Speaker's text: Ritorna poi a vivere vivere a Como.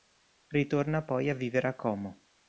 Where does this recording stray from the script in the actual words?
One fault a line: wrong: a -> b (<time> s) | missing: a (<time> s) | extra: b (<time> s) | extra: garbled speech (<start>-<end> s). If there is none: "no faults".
missing: vivere (1.7 s)